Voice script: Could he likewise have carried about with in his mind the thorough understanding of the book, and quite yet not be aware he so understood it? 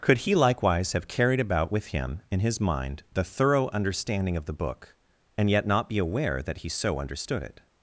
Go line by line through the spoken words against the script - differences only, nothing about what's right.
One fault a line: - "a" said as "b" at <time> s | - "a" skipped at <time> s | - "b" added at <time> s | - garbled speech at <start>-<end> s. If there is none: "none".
- "him" added at 1.9 s
- "quite" skipped at 5.5 s
- "that" added at 6.4 s